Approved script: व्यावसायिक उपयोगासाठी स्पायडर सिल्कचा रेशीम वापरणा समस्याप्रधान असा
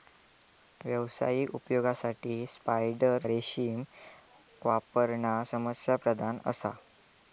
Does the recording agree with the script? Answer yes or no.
no